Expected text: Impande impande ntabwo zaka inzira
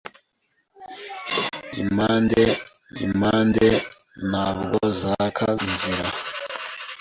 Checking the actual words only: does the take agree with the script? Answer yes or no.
yes